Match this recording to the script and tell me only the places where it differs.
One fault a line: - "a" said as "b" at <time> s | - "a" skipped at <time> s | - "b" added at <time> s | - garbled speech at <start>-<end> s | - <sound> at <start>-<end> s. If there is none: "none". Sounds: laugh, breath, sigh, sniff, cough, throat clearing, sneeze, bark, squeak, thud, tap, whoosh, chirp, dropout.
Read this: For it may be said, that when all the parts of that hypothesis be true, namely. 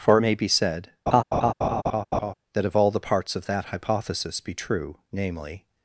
- laugh at 1.1-2.3 s
- "when" said as "if" at 2.6 s